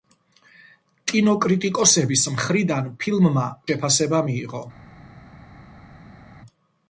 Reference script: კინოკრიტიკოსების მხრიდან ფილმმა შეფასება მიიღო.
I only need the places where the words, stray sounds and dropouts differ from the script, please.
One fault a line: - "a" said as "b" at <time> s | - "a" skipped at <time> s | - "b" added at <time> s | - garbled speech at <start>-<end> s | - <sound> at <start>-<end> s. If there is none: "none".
none